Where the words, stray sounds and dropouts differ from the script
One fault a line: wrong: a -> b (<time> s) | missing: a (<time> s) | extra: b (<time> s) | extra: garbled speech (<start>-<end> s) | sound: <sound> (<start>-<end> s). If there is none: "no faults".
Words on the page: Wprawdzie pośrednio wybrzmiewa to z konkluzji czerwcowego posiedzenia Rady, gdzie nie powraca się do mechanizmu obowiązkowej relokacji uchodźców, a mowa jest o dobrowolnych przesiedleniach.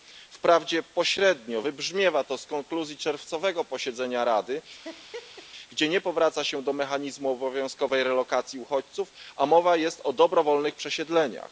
sound: laugh (4.8-5.5 s)